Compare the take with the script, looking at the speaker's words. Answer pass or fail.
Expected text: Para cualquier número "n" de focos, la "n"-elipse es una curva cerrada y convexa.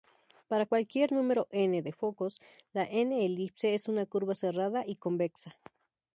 pass